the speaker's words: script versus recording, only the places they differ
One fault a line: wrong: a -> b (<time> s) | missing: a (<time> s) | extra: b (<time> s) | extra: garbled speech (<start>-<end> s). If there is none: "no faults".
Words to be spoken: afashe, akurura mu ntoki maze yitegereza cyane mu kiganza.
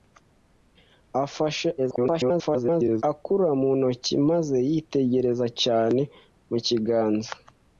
extra: garbled speech (1.8-3.0 s)